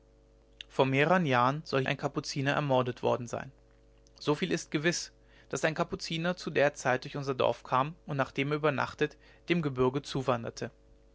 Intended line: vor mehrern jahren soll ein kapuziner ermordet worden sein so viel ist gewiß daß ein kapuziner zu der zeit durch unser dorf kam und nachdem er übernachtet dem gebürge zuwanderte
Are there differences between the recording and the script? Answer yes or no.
no